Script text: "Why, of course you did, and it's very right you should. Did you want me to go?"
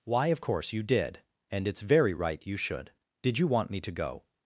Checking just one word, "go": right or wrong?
right